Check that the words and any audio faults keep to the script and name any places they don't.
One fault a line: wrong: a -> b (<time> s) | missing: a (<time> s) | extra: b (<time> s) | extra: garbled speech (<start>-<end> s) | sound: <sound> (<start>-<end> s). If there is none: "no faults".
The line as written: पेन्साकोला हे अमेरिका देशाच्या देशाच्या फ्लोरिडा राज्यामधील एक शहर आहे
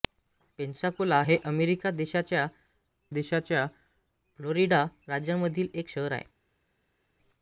no faults